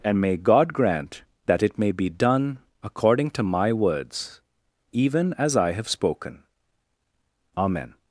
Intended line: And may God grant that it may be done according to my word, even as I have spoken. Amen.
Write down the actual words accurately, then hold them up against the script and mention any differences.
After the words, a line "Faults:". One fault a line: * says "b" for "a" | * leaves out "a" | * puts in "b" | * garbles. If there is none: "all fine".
And may God grant that it may be done according to my words, even as I have spoken. Amen.
Faults:
* says "words" for "word"